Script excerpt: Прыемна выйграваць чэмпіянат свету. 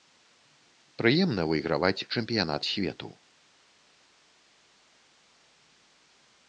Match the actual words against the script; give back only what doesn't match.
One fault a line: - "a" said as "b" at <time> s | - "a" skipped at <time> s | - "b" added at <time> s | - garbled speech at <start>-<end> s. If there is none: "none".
none